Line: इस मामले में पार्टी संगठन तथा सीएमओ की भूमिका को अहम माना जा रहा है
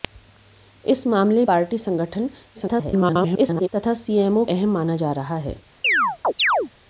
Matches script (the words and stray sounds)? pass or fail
fail